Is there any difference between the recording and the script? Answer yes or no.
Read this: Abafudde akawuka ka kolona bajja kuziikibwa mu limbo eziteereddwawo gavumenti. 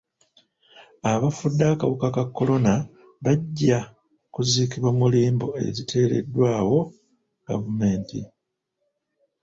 no